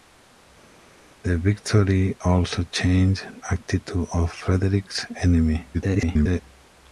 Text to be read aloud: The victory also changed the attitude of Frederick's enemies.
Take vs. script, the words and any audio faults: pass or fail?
fail